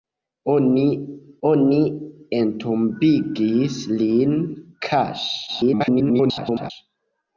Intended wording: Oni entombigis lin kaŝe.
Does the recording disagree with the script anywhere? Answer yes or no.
yes